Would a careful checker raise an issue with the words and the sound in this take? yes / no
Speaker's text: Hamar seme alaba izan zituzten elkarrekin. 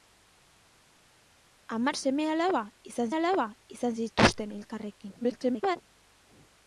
yes